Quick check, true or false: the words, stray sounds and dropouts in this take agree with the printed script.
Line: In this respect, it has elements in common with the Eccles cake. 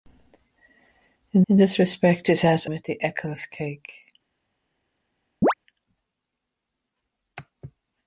false